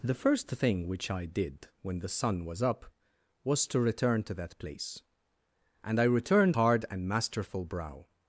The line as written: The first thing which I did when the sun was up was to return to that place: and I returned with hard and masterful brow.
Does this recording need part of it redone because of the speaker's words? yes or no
yes